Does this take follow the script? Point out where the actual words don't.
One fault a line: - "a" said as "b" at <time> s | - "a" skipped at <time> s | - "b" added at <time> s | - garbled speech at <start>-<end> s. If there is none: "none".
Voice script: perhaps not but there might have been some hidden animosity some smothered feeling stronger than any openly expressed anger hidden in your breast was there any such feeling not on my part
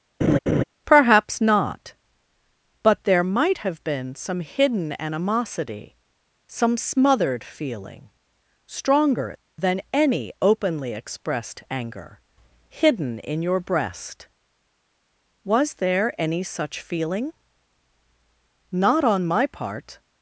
none